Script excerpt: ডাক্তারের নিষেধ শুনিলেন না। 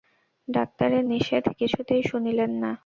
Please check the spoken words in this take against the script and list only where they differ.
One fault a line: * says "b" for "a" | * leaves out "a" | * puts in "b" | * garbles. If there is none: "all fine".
* puts in "কিছুতেই"